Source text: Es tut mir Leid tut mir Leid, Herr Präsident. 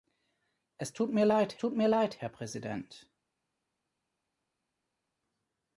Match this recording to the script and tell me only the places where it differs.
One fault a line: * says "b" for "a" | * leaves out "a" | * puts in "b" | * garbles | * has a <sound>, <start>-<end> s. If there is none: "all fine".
all fine